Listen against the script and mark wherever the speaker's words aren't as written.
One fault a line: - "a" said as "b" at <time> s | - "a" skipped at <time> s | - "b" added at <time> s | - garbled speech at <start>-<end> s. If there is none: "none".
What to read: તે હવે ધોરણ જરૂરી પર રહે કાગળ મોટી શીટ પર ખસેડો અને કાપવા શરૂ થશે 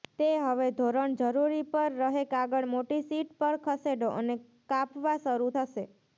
none